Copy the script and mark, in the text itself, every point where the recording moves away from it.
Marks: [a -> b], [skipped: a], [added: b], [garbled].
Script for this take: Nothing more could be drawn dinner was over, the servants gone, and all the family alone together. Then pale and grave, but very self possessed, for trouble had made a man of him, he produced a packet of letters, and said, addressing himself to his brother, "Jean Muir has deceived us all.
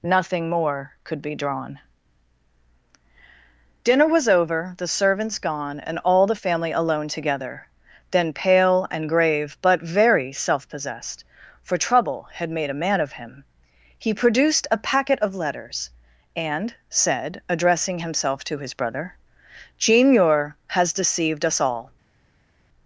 Nothing more could be drawn dinner was over, the servants gone, and all the family alone together. Then pale and grave, but very self possessed, for trouble had made a man of him, he produced a packet of letters, and said, addressing himself to his brother, "Jean Muir has deceived us all.